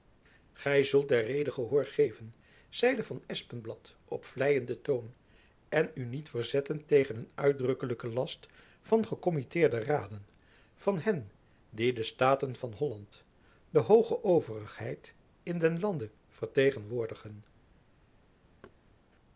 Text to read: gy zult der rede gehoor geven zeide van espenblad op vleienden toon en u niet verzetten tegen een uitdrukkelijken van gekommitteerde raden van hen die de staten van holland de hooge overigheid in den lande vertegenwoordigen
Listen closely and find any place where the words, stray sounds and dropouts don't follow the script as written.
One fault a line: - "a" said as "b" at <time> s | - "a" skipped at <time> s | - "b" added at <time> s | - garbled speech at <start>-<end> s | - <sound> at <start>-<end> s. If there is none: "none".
- "last" added at 8.1 s
- thud at 18.6-18.8 s